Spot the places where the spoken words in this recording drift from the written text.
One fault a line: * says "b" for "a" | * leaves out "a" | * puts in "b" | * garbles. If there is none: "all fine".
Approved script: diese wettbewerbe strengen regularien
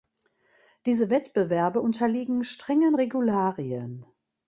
* puts in "unterliegen"